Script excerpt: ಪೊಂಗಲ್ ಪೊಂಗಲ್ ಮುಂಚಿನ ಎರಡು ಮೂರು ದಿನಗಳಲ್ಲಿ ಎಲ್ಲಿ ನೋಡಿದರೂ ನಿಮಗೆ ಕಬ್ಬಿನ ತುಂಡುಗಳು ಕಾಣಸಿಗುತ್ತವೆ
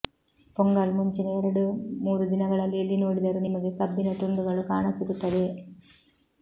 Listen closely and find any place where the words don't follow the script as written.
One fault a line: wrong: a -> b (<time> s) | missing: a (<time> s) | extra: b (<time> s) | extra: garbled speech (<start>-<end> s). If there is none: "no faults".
missing: ಪೊಂಗಲ್ (0.9 s)